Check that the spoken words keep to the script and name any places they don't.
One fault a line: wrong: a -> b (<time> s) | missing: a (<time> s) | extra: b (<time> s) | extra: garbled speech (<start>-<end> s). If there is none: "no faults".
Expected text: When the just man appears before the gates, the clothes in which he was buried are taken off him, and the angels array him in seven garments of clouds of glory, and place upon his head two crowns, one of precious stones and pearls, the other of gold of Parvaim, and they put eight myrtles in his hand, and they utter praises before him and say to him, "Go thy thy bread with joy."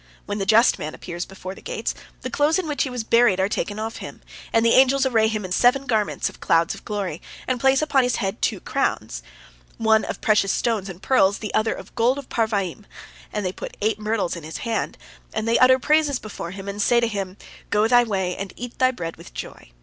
extra: way and eat (18.0 s)